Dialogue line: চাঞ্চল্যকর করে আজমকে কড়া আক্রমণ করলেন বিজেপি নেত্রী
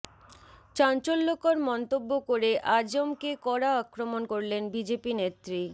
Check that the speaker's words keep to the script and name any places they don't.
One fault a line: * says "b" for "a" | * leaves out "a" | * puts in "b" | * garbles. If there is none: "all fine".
* puts in "মন্তব্য"